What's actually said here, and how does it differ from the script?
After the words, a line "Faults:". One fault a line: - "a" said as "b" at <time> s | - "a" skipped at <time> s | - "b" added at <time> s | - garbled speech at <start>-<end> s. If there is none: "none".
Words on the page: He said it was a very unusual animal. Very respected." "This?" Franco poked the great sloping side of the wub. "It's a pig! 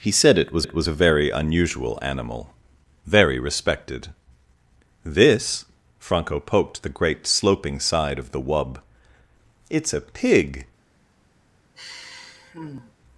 He said it was it was a very unusual animal. Very respected." "This?" Franco poked the great sloping side of the wub. "It's a pig!
Faults:
- "it was" added at 0.6 s